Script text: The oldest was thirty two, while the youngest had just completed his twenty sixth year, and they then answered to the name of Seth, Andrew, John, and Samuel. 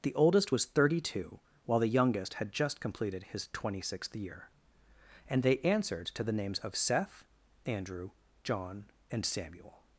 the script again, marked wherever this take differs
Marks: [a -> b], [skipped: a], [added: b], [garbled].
The oldest was thirty two, while the youngest had just completed his twenty sixth year, and they [skipped: then] answered to the [name -> names] of Seth, Andrew, John, and Samuel.